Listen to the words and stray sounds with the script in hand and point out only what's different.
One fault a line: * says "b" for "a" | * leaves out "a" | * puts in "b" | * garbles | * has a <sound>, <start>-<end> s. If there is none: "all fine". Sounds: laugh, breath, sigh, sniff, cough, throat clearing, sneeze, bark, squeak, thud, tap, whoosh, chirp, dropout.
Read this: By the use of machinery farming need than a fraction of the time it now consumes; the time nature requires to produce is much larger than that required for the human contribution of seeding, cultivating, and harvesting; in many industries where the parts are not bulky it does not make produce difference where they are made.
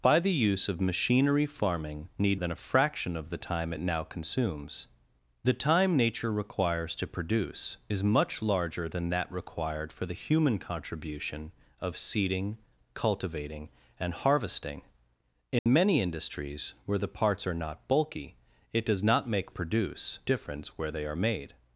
* has a dropout, 15.6-15.7 s